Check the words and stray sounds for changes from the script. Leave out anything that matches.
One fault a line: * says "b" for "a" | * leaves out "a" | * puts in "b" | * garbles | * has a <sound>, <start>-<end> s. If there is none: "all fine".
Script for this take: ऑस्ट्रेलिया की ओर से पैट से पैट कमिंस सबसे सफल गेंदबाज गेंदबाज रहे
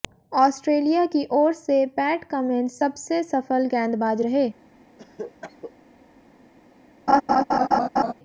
* leaves out "से पैट"
* leaves out "गेंदबाज"
* has a cough, 5.0-5.7 s
* has a laugh, 7.1-8.1 s